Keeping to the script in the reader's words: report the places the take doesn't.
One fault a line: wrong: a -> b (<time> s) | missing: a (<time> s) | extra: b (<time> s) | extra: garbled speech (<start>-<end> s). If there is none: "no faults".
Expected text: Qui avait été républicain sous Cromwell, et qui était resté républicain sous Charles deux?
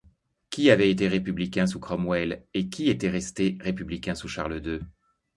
no faults